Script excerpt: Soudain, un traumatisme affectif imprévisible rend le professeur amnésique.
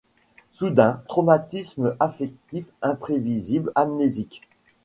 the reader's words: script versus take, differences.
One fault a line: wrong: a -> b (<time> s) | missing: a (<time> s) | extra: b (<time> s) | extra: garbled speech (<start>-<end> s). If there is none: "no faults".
missing: un (1.0 s)
missing: rend le professeur (3.7 s)